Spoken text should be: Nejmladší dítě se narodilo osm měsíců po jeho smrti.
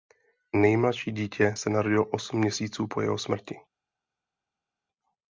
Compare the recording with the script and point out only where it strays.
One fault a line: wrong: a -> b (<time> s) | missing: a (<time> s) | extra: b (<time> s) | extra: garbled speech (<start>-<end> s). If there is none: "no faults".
no faults